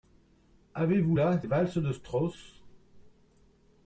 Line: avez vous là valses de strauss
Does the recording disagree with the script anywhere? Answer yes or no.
no